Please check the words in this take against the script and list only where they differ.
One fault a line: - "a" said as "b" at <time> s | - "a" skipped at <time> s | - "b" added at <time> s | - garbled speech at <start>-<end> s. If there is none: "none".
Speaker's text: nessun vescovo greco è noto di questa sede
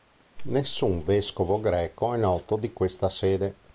none